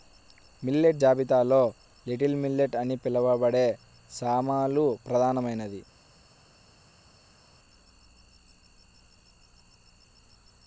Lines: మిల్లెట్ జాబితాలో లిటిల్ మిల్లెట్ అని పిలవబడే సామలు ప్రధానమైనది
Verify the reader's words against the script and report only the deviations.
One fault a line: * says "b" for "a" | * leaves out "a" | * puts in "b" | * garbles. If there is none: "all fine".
all fine